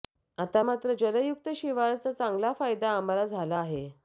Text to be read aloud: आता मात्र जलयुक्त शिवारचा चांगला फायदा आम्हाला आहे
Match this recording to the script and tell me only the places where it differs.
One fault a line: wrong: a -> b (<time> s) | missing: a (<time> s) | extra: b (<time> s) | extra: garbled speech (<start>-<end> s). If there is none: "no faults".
extra: झाला (3.2 s)